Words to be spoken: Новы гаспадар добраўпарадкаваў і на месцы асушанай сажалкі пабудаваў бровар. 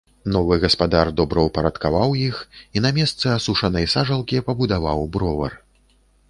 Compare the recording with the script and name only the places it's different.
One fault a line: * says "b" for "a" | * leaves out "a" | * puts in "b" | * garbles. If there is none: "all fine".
* puts in "іх"